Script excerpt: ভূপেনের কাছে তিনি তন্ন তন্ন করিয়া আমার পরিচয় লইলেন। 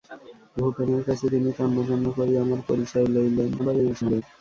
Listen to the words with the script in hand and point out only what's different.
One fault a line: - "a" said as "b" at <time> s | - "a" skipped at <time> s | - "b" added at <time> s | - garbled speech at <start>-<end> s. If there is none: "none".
- garbled speech at 3.6-4.2 s